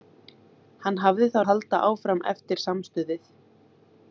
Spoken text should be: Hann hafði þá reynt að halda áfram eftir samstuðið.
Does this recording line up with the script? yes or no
no